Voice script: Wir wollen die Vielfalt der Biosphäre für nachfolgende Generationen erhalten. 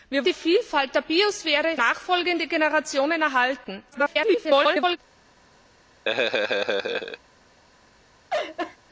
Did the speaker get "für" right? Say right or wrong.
wrong